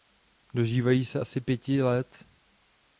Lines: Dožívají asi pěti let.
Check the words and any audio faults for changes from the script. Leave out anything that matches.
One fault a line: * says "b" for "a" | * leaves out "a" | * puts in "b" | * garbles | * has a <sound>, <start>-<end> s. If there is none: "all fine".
* puts in "se"